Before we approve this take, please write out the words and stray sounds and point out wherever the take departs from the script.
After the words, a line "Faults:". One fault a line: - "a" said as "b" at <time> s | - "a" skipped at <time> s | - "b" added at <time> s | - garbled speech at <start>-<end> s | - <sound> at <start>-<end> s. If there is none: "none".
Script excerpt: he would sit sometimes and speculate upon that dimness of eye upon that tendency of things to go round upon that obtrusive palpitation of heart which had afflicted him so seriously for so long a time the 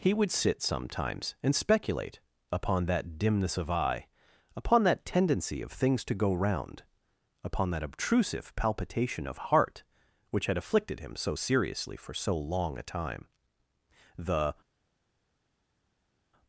he would sit sometimes and speculate upon that dimness of eye upon that tendency of things to go round upon that obtrusive palpitation of heart which had afflicted him so seriously for so long a time the
Faults:
none